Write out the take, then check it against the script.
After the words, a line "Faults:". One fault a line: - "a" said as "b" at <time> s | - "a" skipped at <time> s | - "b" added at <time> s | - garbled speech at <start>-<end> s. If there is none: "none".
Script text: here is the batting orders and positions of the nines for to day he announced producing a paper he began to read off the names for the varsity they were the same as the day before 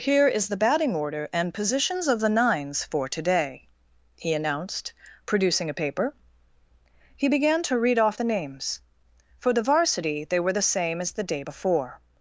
here is the batting order and positions of the nines for to day he announced producing a paper he began to read off the names for the varsity they were the same as the day before
Faults:
- "orders" said as "order" at 0.9 s